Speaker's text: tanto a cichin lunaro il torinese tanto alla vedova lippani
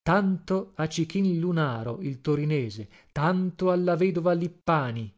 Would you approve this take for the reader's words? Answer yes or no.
yes